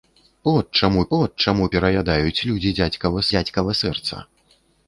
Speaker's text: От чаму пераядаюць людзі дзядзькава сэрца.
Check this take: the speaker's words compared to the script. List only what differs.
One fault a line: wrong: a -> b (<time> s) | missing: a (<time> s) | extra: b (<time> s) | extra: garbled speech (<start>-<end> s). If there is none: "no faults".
extra: от чаму (1.2 s)
extra: дзядзькава (3.4 s)